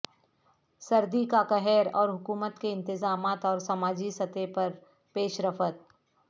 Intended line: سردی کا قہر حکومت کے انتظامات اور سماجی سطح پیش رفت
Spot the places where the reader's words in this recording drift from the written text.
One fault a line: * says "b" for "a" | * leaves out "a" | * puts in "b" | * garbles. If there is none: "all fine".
* puts in "اور"
* puts in "پر"